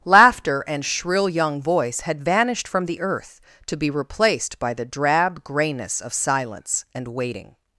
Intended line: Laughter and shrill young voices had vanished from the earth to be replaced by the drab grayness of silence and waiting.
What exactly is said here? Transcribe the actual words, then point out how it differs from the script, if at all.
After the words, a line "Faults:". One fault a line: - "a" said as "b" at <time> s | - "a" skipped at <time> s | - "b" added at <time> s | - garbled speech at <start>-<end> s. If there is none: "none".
Laughter and shrill young voice had vanished from the earth to be replaced by the drab grayness of silence and waiting.
Faults:
- "voices" said as "voice" at 1.6 s